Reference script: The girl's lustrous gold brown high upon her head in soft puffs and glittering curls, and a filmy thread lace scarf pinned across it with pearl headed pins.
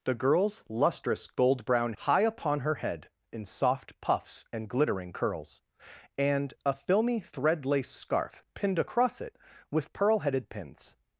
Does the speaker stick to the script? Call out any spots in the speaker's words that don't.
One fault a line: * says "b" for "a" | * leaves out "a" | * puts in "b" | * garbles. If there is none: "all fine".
all fine